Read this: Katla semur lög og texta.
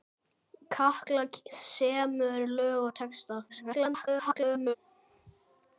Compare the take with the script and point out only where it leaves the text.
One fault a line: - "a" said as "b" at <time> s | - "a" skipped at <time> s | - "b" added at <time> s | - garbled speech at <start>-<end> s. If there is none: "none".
- garbled speech at 3.5-4.8 s